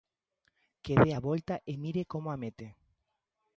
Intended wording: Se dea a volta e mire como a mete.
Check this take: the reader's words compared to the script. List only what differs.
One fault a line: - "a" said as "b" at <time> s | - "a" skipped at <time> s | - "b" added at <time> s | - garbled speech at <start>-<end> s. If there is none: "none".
- "Se" said as "Que" at 0.8 s